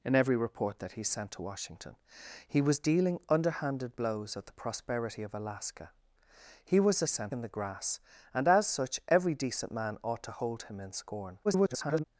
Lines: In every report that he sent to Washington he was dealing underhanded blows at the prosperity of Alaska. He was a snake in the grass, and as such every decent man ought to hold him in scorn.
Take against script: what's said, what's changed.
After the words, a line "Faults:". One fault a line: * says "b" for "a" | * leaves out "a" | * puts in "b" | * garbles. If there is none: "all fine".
In every report that he sent to Washington he was dealing underhanded blows at the prosperity of Alaska. He was a sent in the grass, and as such every decent man ought to hold him in scorn. [garbled]
Faults:
* says "sent" for "snake"
* garbles